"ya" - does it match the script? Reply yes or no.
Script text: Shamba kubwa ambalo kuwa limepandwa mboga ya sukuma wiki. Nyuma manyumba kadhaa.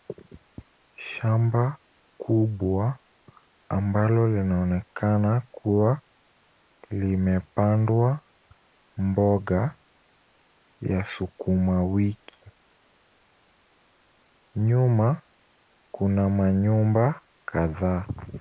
yes